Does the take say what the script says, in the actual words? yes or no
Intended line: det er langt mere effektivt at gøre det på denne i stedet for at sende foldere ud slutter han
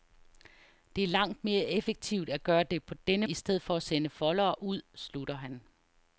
yes